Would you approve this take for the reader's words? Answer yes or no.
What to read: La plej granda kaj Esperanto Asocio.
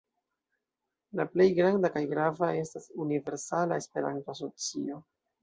no